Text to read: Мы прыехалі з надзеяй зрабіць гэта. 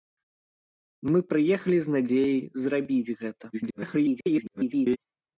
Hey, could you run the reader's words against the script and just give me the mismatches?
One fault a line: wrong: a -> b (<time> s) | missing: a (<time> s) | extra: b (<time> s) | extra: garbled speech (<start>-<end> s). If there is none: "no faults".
extra: garbled speech (3.5-5.0 s)